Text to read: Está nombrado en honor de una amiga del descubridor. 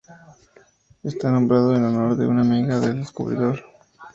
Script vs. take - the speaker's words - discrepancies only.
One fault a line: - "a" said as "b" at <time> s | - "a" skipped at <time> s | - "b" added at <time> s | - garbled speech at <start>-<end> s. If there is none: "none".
none